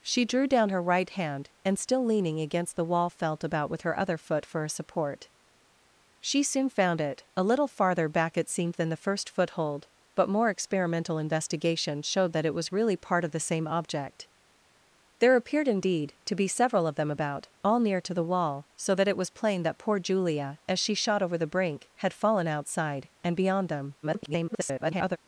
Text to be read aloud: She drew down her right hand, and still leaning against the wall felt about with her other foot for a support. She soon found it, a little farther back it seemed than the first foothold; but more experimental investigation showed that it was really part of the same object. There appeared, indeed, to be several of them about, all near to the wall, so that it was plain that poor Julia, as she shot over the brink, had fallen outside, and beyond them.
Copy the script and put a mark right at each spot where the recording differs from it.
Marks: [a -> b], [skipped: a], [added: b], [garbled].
She drew down her right hand, and still leaning against the wall felt about with her other foot for a support. She soon found it, a little farther back it seemed than the first foothold; but more experimental investigation showed that it was really part of the same object. There appeared, indeed, to be several of them about, all near to the wall, so that it was plain that poor Julia, as she shot over the brink, had fallen outside, and beyond them. [garbled]